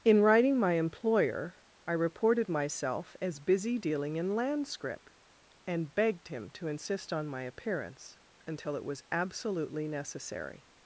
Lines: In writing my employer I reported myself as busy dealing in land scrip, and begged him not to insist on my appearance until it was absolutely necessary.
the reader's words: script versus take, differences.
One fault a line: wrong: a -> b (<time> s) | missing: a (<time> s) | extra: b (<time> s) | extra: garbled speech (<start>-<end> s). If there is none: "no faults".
missing: not (6.5 s)